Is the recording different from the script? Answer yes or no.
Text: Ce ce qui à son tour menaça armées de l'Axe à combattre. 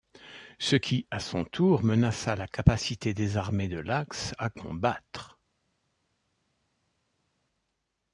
yes